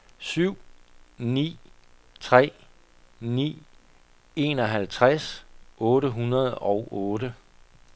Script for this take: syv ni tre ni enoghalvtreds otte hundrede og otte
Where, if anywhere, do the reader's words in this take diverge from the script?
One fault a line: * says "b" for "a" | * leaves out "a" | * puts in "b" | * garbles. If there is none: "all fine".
all fine